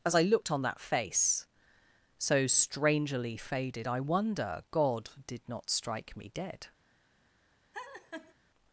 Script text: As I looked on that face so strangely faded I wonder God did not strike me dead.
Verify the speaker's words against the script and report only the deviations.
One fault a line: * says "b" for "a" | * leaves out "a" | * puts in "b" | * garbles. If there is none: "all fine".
all fine